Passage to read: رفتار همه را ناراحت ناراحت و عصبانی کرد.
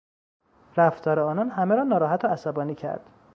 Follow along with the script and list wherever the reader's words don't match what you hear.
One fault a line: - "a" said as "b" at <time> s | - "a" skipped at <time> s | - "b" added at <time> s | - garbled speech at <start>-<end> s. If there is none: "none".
- "آنان" added at 1.2 s
- "ناراحت" skipped at 2.2 s